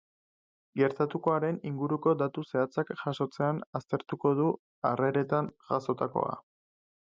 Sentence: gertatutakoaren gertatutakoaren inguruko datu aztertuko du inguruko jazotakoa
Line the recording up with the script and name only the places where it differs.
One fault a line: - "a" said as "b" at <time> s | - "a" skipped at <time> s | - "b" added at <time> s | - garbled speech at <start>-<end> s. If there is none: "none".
- "gertatutakoaren" skipped at 1.6 s
- "zehatzak jasotzean" added at 2.5 s
- "inguruko" said as "harreretan" at 4.9 s